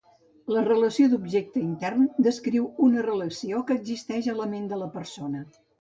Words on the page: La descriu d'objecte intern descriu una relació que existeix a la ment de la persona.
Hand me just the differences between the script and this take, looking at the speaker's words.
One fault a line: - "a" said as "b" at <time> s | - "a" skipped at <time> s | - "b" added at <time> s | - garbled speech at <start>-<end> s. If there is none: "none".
- "descriu" said as "relació" at 0.7 s